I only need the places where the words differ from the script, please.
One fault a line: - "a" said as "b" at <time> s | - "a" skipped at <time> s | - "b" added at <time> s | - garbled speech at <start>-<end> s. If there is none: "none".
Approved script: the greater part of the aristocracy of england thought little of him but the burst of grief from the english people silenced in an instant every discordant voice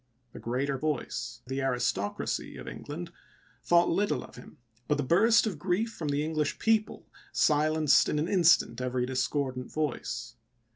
- "part" said as "voice" at 0.8 s